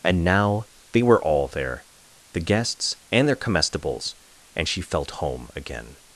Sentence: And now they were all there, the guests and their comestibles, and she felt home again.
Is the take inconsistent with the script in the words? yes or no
no